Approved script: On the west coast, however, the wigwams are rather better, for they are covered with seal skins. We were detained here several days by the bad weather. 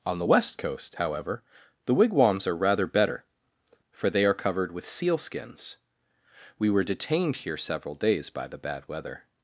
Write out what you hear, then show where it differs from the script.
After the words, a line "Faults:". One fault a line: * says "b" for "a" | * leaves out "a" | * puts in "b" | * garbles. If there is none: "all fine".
On the west coast, however, the wigwams are rather better, for they are covered with seal skins. We were detained here several days by the bad weather.
Faults:
all fine